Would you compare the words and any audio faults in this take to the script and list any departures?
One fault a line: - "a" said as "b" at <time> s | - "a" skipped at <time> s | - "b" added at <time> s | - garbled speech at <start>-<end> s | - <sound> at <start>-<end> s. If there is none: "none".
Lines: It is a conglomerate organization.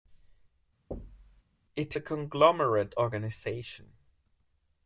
- thud at 0.9-1.4 s
- "is" skipped at 2.0 s